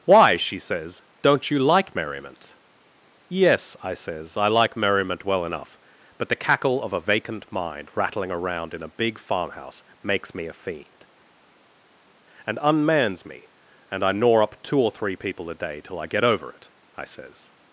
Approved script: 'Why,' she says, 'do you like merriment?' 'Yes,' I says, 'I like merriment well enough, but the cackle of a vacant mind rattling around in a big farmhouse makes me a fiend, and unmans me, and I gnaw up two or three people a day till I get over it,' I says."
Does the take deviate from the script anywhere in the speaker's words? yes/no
yes